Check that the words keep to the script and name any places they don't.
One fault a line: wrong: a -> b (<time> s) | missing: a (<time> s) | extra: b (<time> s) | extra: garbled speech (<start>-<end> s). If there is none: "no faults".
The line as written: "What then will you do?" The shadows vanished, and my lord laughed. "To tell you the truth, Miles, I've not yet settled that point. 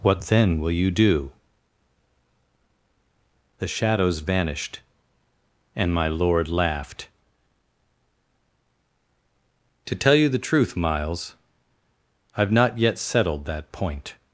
no faults